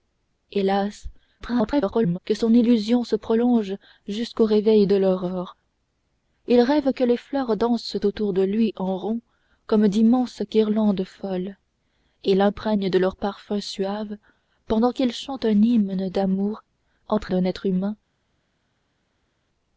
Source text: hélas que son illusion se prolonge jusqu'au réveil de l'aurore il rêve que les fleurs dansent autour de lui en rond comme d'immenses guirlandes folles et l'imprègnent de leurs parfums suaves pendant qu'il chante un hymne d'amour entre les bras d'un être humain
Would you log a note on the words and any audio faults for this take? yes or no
yes